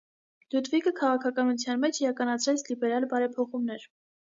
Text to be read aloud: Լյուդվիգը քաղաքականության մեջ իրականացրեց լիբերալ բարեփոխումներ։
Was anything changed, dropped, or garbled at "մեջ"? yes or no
no